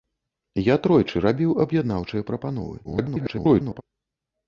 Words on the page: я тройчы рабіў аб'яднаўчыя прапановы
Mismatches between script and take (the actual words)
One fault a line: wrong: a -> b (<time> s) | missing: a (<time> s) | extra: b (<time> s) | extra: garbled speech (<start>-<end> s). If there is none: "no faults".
extra: garbled speech (2.8-3.8 s)